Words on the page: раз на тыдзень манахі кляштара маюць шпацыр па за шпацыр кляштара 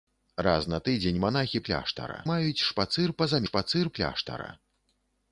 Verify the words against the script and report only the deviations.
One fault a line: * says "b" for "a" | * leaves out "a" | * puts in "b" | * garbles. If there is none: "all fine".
all fine